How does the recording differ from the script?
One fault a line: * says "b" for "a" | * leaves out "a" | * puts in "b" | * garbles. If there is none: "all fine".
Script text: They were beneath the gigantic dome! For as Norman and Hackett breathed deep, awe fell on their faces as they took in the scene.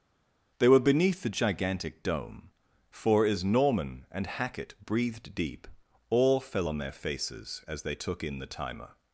* says "timer" for "scene"